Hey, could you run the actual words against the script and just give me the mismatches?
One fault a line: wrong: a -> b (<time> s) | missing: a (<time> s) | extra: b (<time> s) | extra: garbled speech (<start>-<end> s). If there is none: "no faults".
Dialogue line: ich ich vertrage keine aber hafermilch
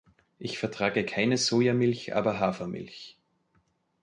missing: ich (0.6 s)
extra: sojamilch (1.4 s)